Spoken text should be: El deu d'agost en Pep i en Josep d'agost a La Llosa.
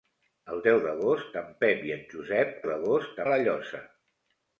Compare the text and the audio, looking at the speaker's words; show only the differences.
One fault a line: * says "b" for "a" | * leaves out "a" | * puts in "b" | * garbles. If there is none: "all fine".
all fine